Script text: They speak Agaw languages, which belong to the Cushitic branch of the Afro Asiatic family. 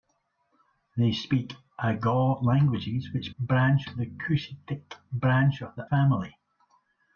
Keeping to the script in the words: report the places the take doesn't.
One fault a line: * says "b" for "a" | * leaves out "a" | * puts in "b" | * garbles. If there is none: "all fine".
* says "branch" for "belong"
* leaves out "Afro Asiatic"